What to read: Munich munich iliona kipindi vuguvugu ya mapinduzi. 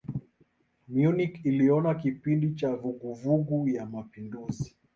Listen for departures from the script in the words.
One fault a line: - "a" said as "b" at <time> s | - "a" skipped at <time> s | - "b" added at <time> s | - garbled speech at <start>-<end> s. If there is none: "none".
- "munich" skipped at 1.4 s
- "cha" added at 2.5 s